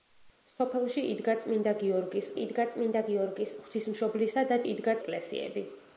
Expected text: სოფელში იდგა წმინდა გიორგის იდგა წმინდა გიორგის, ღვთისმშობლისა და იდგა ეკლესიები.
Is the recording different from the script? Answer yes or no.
no